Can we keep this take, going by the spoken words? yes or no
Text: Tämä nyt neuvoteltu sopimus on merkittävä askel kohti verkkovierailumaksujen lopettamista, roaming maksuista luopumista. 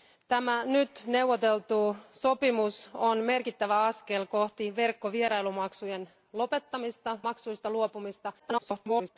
no